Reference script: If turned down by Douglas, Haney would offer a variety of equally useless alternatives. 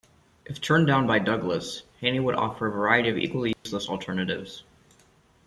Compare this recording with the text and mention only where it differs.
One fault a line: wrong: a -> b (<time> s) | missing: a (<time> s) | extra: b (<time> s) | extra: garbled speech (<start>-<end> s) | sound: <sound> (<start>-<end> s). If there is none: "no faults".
sound: dropout (3.5-3.7 s)